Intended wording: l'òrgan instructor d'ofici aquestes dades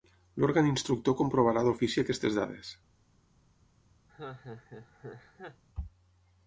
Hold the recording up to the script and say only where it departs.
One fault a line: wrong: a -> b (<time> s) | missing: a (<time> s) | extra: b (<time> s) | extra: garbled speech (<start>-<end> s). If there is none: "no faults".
extra: comprovarà (1.2 s)